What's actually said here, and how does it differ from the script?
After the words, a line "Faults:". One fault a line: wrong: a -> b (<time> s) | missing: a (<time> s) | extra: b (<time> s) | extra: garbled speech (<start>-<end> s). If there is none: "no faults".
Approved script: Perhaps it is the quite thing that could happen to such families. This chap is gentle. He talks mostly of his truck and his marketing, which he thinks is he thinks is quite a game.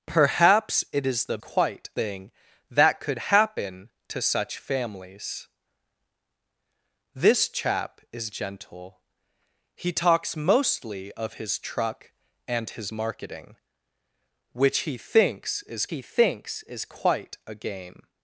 Perhaps it is the quite thing that could happen to such families. This chap is gentle. He talks mostly of his truck and his marketing, which he thinks is he thinks is quite a game.
Faults:
no faults